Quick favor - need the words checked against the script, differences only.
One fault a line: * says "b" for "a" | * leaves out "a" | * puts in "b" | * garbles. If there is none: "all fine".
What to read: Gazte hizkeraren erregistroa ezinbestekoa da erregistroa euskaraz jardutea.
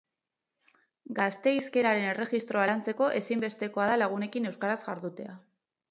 * puts in "lantzeko"
* says "lagunekin" for "erregistroa"